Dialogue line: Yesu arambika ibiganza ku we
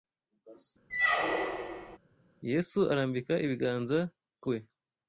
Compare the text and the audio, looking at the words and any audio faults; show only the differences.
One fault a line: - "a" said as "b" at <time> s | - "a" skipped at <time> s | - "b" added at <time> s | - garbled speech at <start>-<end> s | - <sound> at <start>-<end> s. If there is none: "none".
- squeak at 0.9-2.0 s